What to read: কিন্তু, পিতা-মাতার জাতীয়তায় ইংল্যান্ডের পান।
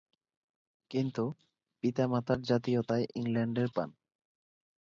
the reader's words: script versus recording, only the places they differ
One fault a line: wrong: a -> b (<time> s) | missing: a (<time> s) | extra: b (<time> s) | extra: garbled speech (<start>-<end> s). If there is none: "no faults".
no faults